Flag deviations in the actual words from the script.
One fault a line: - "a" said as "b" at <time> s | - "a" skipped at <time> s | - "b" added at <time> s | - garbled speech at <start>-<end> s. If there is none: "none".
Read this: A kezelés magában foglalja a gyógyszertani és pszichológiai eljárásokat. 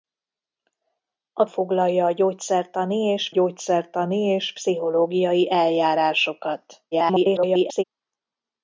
- "kezelés magában foglalja a" said as "foglalja a gyógyszertani és" at 1.5 s
- garbled speech at 6.9-7.8 s